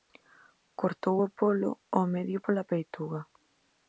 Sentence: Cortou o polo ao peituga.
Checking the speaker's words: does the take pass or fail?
fail